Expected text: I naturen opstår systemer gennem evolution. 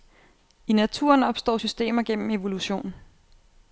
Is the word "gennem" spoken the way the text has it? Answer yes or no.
yes